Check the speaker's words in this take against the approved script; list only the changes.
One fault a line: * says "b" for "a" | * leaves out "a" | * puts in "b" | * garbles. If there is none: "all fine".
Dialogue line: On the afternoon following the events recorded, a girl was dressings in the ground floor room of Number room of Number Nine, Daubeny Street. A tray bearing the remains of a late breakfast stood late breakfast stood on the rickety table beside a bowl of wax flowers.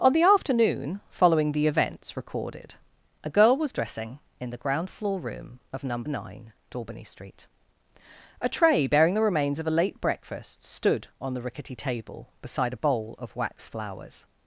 * says "dressing" for "dressings"
* leaves out "room of Number"
* leaves out "late breakfast stood"